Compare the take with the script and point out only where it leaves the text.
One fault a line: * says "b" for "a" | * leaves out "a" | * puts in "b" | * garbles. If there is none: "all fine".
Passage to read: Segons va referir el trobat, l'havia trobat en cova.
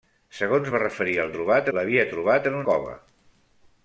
all fine